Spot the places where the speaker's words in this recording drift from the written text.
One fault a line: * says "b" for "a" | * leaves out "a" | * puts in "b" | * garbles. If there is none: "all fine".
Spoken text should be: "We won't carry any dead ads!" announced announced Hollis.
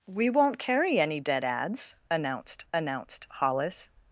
all fine